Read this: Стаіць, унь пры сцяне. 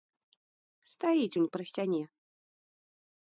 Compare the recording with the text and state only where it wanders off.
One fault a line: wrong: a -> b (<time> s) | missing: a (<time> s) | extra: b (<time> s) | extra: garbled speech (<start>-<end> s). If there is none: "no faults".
no faults